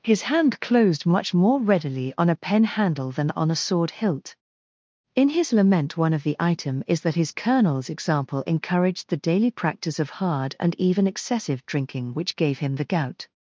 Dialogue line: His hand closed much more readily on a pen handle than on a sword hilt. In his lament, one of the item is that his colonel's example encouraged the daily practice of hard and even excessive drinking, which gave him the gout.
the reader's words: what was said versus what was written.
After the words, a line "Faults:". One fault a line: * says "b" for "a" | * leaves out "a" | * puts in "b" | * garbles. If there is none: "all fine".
His hand closed much more readily on a pen handle than on a sword hilt. In his lament, one of the item is that his colonel's example encouraged the daily practice of hard and even excessive drinking, which gave him the gout.
Faults:
all fine